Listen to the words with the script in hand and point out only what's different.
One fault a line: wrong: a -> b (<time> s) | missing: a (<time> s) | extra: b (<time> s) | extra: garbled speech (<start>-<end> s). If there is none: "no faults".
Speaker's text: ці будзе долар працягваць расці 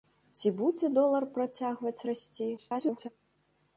extra: garbled speech (2.6-3.1 s)